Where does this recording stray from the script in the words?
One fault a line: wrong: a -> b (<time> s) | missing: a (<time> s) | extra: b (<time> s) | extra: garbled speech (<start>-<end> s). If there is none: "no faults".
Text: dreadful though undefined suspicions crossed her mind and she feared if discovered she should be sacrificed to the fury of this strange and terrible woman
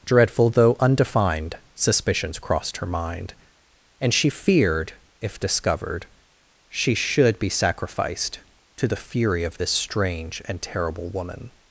no faults